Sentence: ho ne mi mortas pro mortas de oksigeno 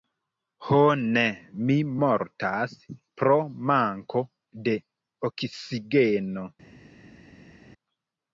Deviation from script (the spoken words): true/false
true